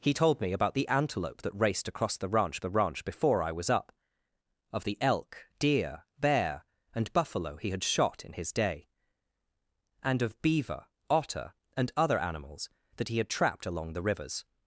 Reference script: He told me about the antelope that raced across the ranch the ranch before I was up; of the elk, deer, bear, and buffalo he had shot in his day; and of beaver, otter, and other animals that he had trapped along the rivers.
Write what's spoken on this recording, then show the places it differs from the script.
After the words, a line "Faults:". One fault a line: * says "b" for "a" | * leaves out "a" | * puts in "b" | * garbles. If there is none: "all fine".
He told me about the antelope that raced across the ranch the ranch before I was up; of the elk, deer, bear, and buffalo he had shot in his day; and of beaver, otter, and other animals that he had trapped along the rivers.
Faults:
all fine